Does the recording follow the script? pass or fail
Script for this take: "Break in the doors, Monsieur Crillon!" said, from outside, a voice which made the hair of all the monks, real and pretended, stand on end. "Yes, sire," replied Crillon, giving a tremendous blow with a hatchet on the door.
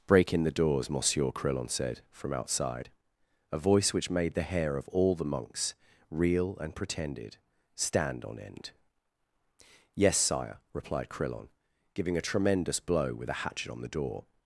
pass